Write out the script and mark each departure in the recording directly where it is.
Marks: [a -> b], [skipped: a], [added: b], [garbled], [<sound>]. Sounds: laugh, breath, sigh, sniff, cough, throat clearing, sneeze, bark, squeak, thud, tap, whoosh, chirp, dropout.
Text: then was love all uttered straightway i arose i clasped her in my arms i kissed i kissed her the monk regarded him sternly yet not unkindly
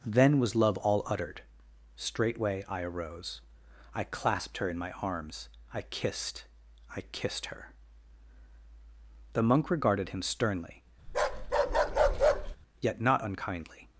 then was love all uttered straightway i arose i clasped her in my arms i kissed i kissed her the monk regarded him sternly [bark] yet not unkindly